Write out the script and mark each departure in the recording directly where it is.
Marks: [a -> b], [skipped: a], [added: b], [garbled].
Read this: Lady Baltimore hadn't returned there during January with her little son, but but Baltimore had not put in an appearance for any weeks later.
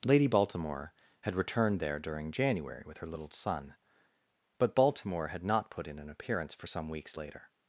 Lady Baltimore [hadn't -> had] returned there during January with her little son, but [skipped: but] Baltimore had not put in an appearance for [any -> some] weeks later.